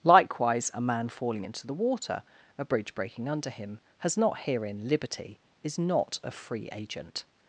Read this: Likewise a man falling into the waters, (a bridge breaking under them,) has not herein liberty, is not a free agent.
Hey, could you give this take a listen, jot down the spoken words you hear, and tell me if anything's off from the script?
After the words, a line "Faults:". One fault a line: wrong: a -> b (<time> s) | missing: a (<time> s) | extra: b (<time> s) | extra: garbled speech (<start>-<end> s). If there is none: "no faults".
Likewise a man falling into the water, (a bridge breaking under him,) has not herein liberty, is not a free agent.
Faults:
wrong: waters -> water (1.7 s)
wrong: them -> him (3.5 s)